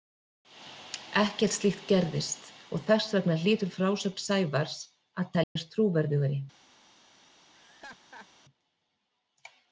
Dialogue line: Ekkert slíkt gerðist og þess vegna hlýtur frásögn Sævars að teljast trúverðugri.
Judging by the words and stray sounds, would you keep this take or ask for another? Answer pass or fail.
fail